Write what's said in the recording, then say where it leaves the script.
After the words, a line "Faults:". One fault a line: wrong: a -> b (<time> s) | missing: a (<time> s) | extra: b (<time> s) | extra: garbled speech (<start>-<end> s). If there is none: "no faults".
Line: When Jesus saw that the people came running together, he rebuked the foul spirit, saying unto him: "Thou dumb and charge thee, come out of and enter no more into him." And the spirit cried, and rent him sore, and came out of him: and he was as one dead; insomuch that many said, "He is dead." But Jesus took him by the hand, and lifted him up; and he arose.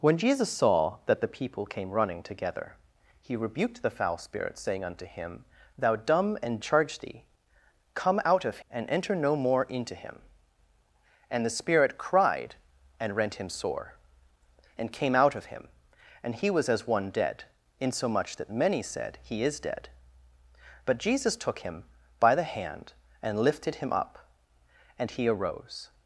When Jesus saw that the people came running together, he rebuked the foul spirit, saying unto him: "Thou dumb and charge thee, come out of and enter no more into him." And the spirit cried, and rent him sore, and came out of him: and he was as one dead; insomuch that many said, "He is dead." But Jesus took him by the hand, and lifted him up; and he arose.
Faults:
no faults